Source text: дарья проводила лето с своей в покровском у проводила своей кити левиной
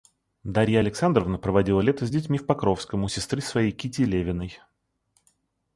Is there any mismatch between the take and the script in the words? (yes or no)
yes